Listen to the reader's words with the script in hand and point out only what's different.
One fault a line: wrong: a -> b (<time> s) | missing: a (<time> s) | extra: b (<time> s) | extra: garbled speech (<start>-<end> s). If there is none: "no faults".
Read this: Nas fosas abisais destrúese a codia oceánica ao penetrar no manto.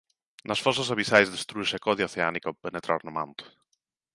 no faults